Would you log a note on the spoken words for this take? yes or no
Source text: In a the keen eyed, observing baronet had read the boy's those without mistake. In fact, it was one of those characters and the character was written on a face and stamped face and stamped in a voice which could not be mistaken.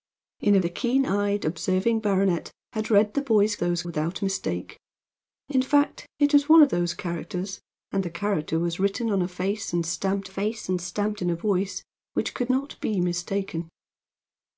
no